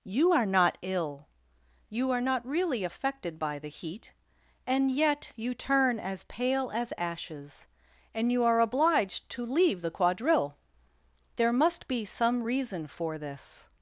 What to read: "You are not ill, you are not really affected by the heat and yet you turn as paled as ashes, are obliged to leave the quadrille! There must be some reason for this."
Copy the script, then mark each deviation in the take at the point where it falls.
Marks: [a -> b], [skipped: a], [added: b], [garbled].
"You are not ill, you are not really affected by the heat and yet you turn as [paled -> pale] as ashes, [added: and you] are obliged to leave the quadrille! There must be some reason for this."